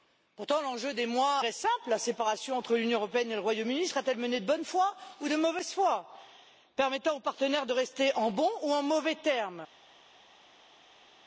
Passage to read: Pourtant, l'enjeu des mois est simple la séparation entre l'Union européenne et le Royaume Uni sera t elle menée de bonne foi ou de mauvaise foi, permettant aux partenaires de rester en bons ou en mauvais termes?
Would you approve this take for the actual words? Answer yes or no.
yes